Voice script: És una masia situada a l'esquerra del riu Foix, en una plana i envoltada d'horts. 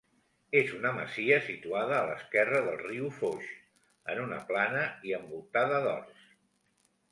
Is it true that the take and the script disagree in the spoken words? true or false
false